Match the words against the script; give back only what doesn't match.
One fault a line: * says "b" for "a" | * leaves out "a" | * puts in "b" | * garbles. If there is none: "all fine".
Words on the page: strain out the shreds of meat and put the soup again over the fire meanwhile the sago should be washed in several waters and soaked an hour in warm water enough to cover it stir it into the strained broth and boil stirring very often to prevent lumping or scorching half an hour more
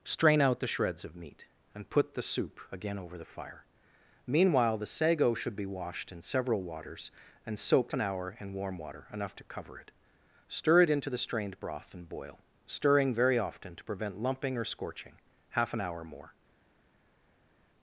all fine